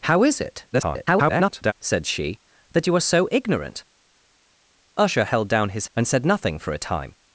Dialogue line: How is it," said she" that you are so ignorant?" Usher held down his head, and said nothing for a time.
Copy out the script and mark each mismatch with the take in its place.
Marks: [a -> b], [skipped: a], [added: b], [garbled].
How is it," [garbled] said she" that you are so ignorant?" Usher held down his [skipped: head,] and said nothing for a time.